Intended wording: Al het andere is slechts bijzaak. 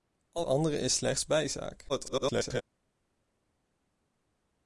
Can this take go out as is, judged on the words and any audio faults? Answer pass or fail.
fail